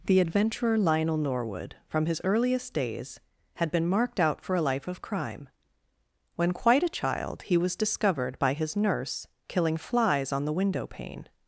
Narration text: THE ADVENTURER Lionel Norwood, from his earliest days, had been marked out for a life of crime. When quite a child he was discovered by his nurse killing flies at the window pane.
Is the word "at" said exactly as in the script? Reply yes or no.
no